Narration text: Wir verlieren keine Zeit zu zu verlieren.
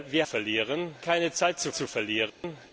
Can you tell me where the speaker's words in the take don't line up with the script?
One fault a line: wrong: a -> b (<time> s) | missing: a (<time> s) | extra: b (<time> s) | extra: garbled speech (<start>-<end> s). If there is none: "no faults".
no faults